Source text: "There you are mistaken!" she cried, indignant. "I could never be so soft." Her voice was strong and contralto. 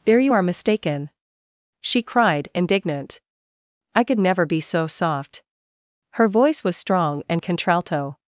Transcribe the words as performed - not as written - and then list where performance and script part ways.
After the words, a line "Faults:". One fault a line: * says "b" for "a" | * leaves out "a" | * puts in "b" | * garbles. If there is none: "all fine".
"There you are mistaken!" she cried, indignant. "I could never be so soft." Her voice was strong and contralto.
Faults:
all fine